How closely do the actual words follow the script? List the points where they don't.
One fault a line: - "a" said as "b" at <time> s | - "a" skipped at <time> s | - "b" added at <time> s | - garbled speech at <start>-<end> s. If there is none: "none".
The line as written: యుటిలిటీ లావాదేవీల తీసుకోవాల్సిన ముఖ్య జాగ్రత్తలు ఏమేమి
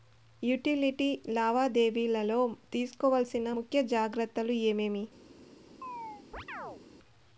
- "లో" added at 2.2 s